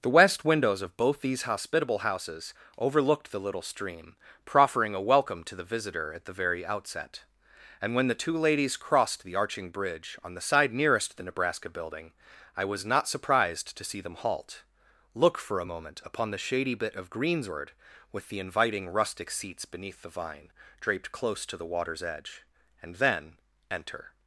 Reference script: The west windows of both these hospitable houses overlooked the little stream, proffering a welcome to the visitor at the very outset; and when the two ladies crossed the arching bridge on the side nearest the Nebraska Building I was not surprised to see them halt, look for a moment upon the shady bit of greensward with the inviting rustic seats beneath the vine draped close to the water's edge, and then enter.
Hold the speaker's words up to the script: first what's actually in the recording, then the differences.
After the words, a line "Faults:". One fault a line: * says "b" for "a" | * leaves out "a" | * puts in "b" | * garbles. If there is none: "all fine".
The west windows of both these hospitable houses overlooked the little stream, proffering a welcome to the visitor at the very outset; and when the two ladies crossed the arching bridge on the side nearest the Nebraska Building I was not surprised to see them halt, look for a moment upon the shady bit of greensward with the inviting rustic seats beneath the vine draped close to the water's edge, and then enter.
Faults:
all fine